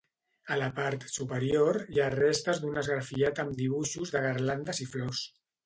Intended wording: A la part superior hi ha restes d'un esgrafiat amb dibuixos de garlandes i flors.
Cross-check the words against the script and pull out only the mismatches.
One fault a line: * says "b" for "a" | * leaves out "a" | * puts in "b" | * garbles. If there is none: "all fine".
all fine